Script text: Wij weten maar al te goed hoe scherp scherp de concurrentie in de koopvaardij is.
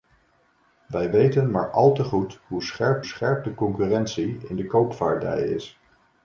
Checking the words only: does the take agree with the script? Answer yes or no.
yes